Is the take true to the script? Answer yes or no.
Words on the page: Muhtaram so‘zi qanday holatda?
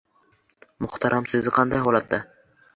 yes